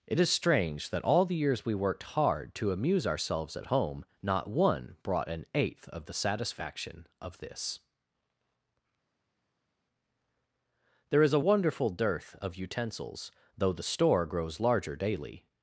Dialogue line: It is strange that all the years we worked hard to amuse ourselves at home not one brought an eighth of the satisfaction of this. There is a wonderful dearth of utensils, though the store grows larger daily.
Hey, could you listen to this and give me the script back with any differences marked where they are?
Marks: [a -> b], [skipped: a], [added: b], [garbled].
It is strange that all the years we worked hard to amuse ourselves at home not one brought an eighth of the satisfaction of this. There is a wonderful dearth of utensils, though the store grows larger daily.